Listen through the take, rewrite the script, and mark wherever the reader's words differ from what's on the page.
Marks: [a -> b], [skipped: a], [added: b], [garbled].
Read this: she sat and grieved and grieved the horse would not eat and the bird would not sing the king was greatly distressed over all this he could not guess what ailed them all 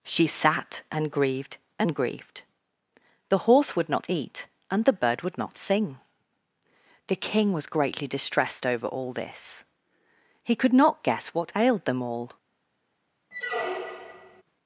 she sat and grieved and grieved the horse would not eat and the bird would not sing the king was greatly distressed over all this he could not guess what ailed them all